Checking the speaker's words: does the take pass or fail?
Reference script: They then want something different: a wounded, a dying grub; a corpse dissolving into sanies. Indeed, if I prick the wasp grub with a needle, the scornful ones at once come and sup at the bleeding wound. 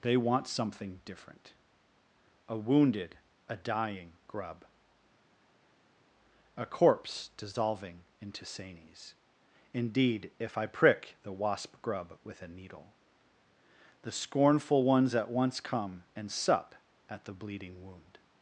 fail